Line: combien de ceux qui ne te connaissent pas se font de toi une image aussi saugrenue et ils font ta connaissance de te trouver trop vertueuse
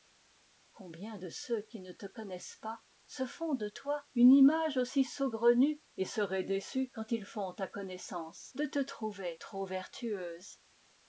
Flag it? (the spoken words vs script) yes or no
yes